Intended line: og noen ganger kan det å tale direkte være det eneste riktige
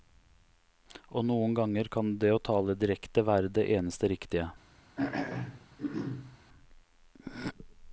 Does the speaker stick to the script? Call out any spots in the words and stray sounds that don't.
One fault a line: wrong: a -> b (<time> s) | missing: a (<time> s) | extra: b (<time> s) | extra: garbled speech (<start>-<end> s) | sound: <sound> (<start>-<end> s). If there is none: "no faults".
sound: throat clearing (5.0-6.4 s)